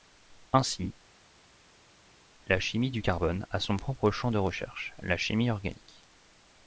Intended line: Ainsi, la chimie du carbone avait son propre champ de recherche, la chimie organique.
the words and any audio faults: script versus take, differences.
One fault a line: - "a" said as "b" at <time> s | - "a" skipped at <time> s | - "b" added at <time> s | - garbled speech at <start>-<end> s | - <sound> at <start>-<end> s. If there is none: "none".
- "avait" said as "a" at 3.5 s